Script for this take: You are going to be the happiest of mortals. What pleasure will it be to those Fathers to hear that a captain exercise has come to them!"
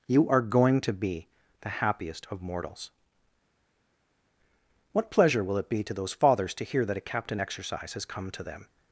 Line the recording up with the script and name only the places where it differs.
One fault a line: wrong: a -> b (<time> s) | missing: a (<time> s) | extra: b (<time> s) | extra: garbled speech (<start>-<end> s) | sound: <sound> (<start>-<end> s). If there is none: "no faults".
no faults